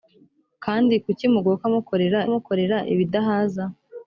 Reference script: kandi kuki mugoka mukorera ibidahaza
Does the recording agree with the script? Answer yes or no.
no